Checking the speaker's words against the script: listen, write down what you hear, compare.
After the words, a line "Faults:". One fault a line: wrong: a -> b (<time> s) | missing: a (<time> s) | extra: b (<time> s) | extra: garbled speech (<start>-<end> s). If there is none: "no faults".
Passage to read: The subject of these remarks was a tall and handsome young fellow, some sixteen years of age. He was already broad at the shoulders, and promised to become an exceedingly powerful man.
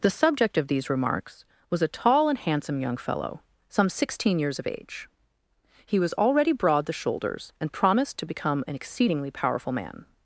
The subject of these remarks was a tall and handsome young fellow, some sixteen years of age. He was already broad the shoulders, and promised to become an exceedingly powerful man.
Faults:
missing: at (6.9 s)